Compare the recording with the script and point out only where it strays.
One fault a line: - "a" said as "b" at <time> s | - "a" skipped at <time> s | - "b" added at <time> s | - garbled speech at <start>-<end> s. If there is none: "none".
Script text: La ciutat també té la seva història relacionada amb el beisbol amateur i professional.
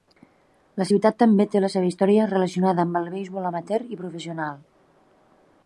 none